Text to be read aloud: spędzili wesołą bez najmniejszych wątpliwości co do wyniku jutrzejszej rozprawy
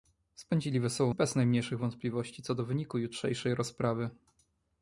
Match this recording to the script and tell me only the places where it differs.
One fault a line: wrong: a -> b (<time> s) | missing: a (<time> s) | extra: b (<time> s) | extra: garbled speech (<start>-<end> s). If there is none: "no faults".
no faults